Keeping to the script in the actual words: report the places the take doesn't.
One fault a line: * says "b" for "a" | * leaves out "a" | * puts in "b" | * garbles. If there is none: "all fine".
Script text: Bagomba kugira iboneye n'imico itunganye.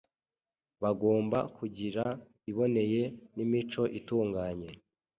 all fine